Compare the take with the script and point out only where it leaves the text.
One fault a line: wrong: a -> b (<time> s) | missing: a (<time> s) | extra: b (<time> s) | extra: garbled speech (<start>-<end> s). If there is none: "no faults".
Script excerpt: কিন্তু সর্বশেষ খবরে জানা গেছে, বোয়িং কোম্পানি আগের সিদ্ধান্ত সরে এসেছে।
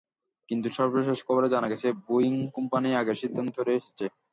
no faults